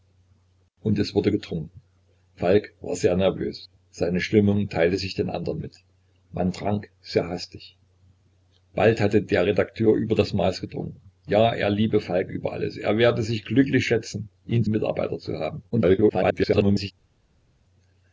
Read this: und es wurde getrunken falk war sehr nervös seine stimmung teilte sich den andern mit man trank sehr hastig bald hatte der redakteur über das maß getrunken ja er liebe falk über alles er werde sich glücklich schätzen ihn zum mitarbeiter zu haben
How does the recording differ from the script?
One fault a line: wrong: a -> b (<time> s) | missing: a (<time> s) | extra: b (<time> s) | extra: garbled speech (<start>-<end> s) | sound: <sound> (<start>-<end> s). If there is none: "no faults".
missing: zum (14.6 s)
extra: garbled speech (15.7-16.9 s)